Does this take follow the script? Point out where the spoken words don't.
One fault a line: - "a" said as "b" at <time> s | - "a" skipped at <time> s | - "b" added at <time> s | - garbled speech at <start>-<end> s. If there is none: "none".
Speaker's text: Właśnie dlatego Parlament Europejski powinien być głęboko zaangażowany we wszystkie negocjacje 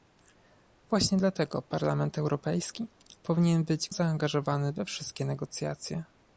- "głęboko" skipped at 3.9 s